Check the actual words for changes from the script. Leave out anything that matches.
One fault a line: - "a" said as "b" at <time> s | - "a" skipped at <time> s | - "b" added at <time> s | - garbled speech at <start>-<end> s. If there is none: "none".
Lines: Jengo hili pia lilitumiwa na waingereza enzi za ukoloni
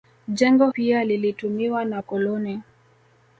- "hili" skipped at 0.7 s
- "waingereza enzi za" skipped at 2.0 s